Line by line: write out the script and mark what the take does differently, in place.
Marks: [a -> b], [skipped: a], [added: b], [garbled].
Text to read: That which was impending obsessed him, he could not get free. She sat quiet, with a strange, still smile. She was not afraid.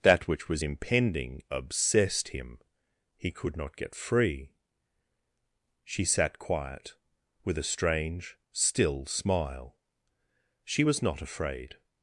That which was impending obsessed him, he could not get free. She sat quiet, with a strange, still smile. She was not afraid.